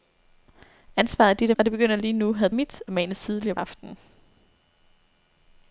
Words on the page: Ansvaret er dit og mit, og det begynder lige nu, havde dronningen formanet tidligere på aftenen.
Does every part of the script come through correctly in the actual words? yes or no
no